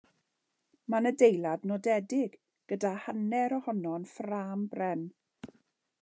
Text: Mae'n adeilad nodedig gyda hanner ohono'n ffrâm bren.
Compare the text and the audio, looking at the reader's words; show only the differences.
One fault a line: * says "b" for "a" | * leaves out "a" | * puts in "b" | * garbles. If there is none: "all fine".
all fine